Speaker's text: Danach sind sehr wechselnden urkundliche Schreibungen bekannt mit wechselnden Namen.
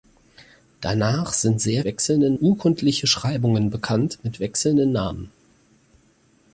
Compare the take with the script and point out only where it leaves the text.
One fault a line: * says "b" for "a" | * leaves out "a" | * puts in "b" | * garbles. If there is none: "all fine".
all fine